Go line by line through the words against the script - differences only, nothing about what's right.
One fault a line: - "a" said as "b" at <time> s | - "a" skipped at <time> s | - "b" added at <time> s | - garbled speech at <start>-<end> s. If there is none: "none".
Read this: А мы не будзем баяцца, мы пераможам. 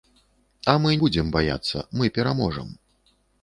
- "не" skipped at 0.9 s